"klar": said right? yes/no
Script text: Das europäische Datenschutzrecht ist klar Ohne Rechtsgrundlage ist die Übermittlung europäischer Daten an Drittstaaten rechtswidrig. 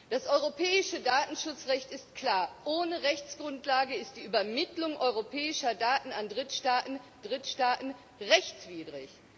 yes